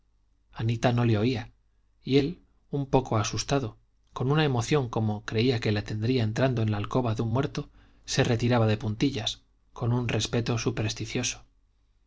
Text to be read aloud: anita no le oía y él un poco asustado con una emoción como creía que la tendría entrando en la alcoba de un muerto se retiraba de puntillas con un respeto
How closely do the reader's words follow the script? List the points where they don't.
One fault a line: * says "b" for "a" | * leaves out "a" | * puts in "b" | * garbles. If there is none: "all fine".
all fine